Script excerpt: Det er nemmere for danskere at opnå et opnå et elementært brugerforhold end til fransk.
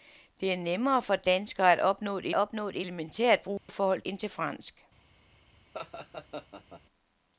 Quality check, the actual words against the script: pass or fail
pass